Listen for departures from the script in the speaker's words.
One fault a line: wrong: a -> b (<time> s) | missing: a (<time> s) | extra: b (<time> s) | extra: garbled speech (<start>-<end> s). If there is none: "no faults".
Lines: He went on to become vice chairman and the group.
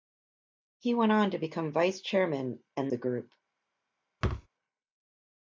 no faults